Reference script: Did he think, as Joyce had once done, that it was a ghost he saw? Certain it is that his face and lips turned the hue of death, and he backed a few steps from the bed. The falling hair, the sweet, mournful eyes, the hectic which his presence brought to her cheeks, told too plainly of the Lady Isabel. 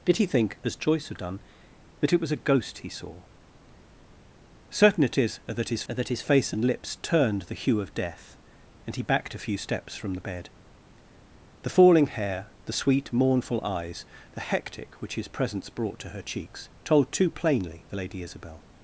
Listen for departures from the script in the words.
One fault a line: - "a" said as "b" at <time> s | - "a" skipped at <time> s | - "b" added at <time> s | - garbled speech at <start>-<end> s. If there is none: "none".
- "once" skipped at 1.2 s
- "that his" added at 5.9 s
- "of" skipped at 17.8 s